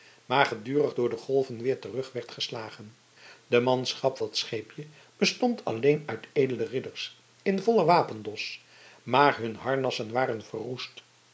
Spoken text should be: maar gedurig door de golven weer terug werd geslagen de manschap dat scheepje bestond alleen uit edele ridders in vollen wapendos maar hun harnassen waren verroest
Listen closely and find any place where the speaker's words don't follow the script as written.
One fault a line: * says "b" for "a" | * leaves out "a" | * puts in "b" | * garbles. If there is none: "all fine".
all fine